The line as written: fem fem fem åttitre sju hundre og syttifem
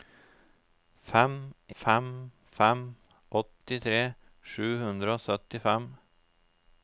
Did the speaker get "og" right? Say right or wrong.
right